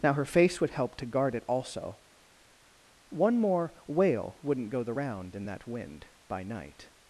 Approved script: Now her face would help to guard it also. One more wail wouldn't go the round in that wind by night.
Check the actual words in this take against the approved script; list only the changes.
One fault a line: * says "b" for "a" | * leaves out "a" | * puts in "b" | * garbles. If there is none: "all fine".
all fine